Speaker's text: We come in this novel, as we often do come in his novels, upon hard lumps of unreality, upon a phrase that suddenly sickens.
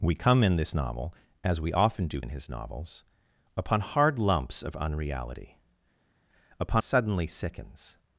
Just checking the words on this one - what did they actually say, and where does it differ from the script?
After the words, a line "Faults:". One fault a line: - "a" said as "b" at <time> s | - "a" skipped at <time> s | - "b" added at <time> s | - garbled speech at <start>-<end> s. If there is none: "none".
We come in this novel, as we often do in his novels, upon hard lumps of unreality, upon suddenly sickens.
Faults:
- "come" skipped at 2.2 s
- "a phrase that" skipped at 6.8 s